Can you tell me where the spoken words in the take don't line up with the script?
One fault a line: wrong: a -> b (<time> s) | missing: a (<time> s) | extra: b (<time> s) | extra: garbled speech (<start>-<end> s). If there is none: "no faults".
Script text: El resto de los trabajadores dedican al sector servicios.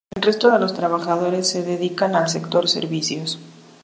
extra: se (1.5 s)